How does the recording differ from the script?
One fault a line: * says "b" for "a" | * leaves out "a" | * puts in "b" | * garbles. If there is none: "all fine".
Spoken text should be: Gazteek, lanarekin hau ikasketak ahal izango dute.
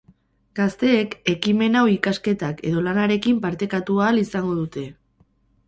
* says "ekimen" for "lanarekin"
* puts in "edo lanarekin partekatu"